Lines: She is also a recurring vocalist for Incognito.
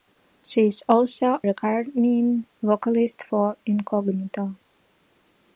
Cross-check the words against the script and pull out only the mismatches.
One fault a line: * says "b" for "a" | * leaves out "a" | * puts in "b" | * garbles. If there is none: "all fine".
* leaves out "a"